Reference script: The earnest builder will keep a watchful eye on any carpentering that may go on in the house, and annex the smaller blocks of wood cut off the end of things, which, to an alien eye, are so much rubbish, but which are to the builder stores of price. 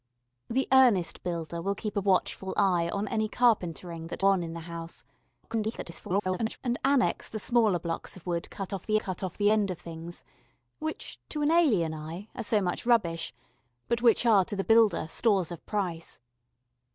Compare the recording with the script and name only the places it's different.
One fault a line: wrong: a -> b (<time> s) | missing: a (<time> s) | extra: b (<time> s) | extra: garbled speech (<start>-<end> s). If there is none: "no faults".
missing: may go (4.2 s)
extra: garbled speech (5.4-6.6 s)
extra: cut off the (9.0 s)